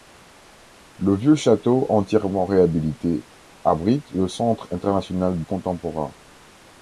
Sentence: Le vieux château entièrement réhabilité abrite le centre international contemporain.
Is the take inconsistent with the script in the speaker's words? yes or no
no